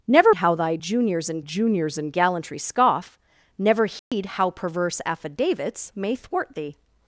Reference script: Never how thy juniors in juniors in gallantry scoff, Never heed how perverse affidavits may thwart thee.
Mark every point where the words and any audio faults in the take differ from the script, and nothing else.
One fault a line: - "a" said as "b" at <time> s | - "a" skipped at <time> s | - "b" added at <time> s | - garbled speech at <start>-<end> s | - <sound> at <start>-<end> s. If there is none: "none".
- dropout at 4.0-4.1 s